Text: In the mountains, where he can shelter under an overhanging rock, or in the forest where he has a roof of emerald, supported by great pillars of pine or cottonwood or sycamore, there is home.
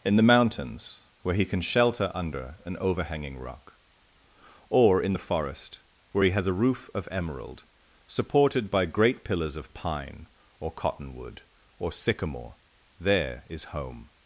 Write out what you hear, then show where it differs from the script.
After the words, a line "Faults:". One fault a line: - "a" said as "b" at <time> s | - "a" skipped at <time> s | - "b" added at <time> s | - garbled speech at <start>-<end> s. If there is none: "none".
In the mountains, where he can shelter under an overhanging rock, or in the forest where he has a roof of emerald, supported by great pillars of pine or cottonwood or sycamore, there is home.
Faults:
none